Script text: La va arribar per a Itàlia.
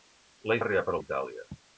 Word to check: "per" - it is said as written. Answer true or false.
true